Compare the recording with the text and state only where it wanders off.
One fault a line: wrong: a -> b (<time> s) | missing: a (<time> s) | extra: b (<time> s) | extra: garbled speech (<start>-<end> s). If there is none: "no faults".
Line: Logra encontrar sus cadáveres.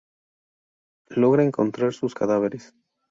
no faults